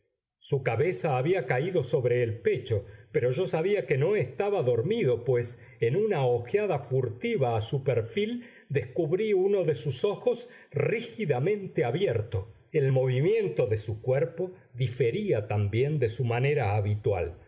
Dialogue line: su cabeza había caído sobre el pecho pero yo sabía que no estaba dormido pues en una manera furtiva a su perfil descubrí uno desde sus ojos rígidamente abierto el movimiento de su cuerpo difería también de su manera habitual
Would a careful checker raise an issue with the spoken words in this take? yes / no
yes